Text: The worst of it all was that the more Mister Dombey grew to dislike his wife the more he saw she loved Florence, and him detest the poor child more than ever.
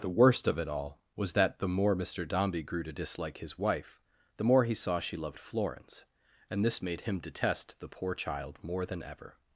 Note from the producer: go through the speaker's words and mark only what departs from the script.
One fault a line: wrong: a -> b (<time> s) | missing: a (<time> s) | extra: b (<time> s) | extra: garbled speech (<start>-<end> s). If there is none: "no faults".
extra: this made (6.7 s)